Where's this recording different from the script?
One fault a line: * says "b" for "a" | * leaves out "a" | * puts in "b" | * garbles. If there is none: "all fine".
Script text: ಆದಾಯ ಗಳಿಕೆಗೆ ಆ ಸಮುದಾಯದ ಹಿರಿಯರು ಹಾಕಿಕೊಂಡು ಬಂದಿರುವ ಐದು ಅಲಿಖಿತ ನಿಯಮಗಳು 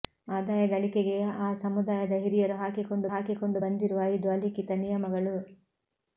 * puts in "ಹಾಕಿಕೊಂಡು"